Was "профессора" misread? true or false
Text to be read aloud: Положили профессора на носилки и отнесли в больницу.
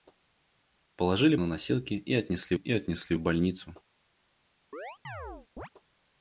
true